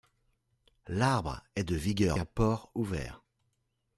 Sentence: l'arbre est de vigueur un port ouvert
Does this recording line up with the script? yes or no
yes